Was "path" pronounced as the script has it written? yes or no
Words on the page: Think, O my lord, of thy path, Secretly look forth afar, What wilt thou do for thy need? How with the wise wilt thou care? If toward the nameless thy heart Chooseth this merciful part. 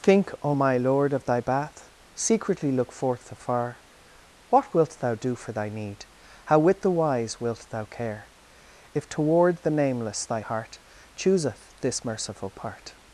no